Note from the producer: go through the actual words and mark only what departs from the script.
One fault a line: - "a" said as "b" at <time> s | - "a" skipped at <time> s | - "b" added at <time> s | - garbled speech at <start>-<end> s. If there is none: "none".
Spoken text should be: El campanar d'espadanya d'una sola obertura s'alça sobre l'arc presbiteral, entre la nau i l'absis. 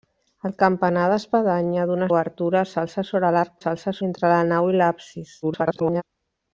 - "sola" skipped at 2.1 s
- "presbiteral" said as "s'alça" at 3.6 s
- garbled speech at 5.4-6.0 s